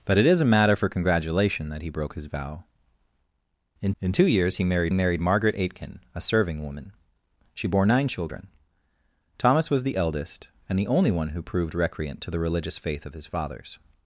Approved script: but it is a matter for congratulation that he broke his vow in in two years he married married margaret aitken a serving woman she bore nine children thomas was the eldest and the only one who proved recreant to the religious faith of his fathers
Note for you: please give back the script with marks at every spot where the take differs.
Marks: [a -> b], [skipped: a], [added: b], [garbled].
but it is a matter for congratulation that he broke his vow in in two years he married married margaret aitken a serving woman she bore nine children thomas was the eldest and the only one who proved recreant to the religious faith of his fathers